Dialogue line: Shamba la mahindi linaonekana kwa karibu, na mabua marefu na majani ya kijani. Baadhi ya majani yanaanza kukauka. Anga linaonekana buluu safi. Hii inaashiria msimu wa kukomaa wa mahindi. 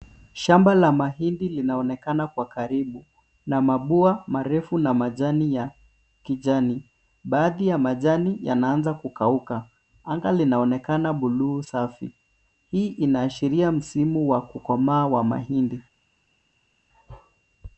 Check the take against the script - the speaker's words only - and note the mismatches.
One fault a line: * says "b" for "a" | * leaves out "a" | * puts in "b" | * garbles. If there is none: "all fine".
all fine